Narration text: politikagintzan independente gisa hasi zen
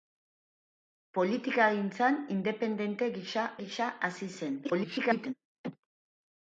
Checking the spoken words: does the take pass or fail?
fail